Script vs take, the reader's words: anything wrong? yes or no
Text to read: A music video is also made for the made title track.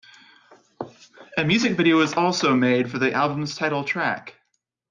yes